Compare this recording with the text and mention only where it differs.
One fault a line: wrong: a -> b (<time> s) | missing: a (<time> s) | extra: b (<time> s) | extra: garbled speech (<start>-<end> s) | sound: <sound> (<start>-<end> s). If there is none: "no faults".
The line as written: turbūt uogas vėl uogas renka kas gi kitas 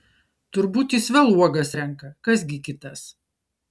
wrong: uogas -> jis (0.9 s)